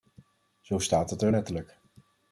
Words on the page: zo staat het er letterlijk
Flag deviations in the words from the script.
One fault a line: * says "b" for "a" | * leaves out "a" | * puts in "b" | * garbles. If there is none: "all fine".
all fine